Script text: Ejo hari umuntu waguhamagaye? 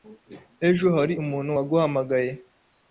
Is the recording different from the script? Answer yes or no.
no